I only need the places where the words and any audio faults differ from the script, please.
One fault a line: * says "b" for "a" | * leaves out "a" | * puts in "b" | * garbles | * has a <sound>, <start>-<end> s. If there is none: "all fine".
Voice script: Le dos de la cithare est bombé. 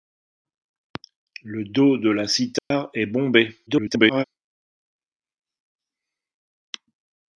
* has a dropout, 2.6-2.7 s
* garbles